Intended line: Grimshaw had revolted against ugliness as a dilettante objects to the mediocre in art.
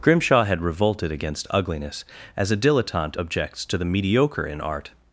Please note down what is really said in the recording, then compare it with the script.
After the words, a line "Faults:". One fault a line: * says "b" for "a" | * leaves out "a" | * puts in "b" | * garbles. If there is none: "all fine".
Grimshaw had revolted against ugliness as a dilettante objects to the mediocre in art.
Faults:
all fine